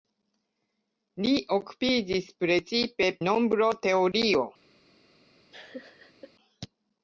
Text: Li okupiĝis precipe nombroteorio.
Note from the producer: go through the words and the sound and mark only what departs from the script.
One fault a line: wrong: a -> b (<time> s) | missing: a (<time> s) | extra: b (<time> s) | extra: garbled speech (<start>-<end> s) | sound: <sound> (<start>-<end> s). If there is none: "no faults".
sound: laugh (5.5-6.3 s)